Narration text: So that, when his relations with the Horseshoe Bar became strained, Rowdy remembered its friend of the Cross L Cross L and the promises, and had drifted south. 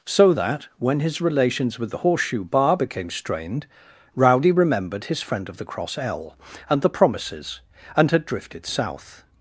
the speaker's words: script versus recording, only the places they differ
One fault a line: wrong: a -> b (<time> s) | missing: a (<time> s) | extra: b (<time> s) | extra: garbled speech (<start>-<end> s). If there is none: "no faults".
wrong: its -> his (5.0 s)
missing: Cross L (6.4 s)